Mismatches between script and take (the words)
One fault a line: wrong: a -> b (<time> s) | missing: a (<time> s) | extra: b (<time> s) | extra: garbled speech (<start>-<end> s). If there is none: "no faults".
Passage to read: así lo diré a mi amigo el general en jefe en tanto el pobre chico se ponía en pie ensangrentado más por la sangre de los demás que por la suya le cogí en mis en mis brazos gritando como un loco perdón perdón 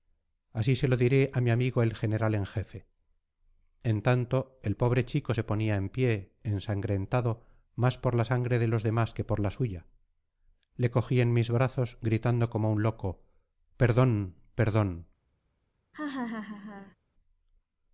extra: se (0.8 s)
missing: en mis (11.5 s)